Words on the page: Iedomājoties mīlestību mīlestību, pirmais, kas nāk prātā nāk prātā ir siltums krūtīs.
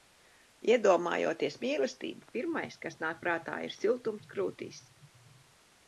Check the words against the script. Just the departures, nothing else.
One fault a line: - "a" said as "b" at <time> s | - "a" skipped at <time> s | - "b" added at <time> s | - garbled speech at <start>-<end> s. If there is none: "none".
- "mīlestību" skipped at 2.3 s
- "nāk prātā" skipped at 3.6 s